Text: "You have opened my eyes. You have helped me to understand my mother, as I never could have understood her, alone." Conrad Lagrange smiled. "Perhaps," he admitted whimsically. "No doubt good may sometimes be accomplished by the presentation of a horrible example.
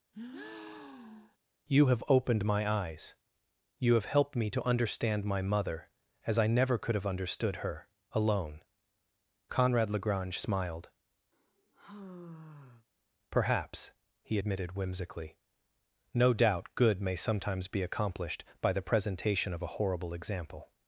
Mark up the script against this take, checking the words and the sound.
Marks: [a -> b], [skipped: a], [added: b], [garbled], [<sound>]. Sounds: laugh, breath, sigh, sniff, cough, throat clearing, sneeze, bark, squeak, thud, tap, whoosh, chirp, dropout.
[breath] "You have opened my eyes. You have helped me to understand my mother, as I never could have understood her, alone." Conrad Lagrange smiled. [sigh] "Perhaps," he admitted whimsically. "No doubt good may sometimes be accomplished by the presentation of a horrible example.